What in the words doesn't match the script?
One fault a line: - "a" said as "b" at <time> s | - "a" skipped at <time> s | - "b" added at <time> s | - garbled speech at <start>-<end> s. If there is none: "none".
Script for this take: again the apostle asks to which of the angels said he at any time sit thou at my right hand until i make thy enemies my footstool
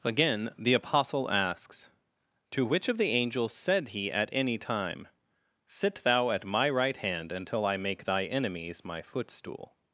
none